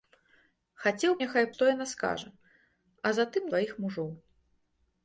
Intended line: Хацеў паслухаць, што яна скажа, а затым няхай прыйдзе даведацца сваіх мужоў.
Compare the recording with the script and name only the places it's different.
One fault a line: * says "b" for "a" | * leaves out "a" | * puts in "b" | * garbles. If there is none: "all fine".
* says "няхай" for "паслухаць"
* leaves out "няхай прыйдзе даведацца"